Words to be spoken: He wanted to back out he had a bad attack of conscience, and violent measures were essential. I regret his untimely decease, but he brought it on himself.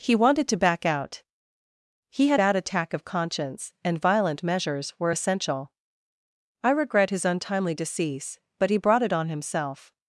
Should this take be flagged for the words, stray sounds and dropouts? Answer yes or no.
yes